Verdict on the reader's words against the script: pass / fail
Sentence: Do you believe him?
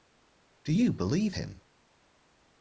pass